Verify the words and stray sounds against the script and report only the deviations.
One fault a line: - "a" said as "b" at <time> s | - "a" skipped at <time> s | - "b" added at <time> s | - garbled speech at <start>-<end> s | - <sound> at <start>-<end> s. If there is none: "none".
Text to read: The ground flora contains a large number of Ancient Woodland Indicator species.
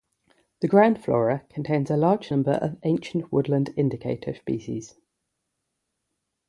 none